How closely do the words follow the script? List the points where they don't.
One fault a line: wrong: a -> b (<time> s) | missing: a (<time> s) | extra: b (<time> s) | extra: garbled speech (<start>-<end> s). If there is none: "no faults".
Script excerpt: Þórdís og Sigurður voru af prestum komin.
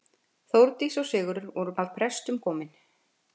no faults